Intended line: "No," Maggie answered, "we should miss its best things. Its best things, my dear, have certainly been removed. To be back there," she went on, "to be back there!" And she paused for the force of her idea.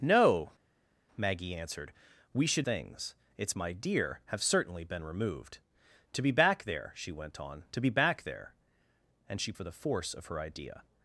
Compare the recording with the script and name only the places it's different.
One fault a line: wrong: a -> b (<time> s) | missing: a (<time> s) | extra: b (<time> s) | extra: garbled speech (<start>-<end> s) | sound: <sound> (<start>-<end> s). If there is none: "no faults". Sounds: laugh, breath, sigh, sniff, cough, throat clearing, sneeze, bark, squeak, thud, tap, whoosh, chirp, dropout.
missing: miss its best (2.7 s)
missing: best things (3.5 s)
missing: paused (9.5 s)